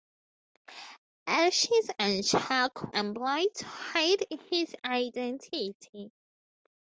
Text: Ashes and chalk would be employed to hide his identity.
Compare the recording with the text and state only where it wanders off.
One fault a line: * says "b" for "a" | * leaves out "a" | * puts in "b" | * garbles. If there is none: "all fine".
* leaves out "would be"